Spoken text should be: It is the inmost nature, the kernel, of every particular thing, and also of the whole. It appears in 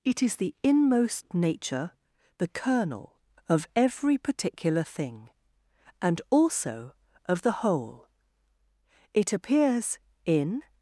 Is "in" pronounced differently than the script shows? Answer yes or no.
no